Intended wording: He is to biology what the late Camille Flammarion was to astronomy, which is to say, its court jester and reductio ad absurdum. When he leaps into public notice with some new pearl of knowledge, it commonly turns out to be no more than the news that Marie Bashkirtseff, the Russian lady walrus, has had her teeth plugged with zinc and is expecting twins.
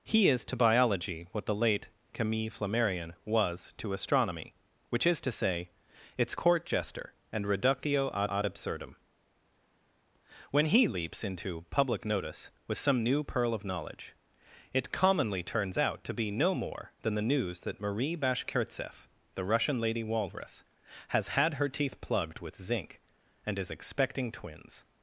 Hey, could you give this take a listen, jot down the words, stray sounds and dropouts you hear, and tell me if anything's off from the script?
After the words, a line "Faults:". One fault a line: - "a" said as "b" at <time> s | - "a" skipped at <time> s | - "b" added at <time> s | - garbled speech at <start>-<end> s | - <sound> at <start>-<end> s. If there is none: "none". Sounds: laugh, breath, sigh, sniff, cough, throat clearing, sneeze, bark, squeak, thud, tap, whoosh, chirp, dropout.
He is to biology what the late Camille Flammarion was to astronomy, which is to say, its court jester and reductio ad ad absurdum. When he leaps into public notice with some new pearl of knowledge, it commonly turns out to be no more than the news that Marie Bashkirtseff, the Russian lady walrus, has had her teeth plugged with zinc and is expecting twins.
Faults:
- "ad" added at 8.3 s